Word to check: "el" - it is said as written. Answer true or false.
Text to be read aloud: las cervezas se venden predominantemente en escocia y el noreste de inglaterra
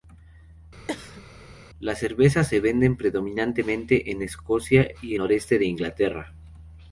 false